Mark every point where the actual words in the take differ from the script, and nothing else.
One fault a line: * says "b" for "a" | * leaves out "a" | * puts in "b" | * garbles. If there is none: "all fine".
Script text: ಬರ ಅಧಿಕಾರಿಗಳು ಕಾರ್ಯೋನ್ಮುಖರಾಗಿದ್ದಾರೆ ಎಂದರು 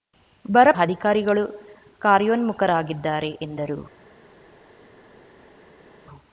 all fine